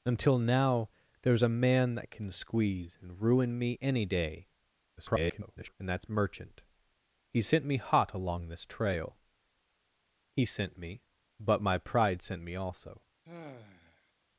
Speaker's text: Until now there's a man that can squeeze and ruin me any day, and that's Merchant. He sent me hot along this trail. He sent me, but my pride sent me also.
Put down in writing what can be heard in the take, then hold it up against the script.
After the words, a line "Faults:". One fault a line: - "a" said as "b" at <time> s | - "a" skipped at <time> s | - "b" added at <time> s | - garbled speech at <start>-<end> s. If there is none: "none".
Until now there's a man that can squeeze and ruin me any day, [garbled] and that's Merchant. He sent me hot along this trail. He sent me, but my pride sent me also.
Faults:
- garbled speech at 5.0-5.7 s